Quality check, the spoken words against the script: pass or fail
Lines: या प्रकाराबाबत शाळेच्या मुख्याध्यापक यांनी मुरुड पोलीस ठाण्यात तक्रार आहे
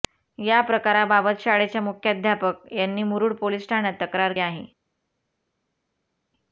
pass